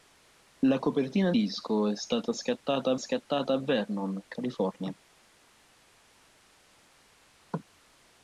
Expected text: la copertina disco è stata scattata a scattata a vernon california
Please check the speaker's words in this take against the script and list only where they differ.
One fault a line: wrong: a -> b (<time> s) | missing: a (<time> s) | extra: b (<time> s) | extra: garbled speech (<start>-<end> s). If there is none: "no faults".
no faults